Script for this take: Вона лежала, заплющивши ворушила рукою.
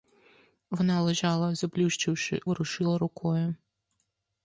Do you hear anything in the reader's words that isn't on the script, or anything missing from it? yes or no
no